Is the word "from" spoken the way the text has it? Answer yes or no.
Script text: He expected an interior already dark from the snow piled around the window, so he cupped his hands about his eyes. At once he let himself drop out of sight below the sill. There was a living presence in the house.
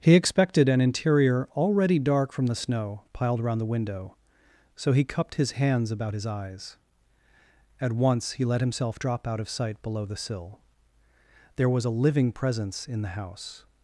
yes